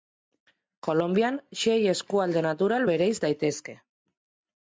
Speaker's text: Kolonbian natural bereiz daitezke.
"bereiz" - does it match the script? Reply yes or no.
yes